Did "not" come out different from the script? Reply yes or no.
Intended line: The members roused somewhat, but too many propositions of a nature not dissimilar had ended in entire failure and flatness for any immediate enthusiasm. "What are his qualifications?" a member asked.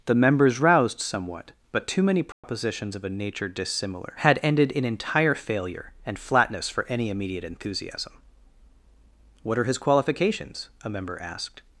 yes